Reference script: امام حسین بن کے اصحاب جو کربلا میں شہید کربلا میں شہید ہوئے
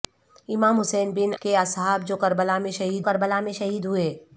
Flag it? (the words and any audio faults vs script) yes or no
no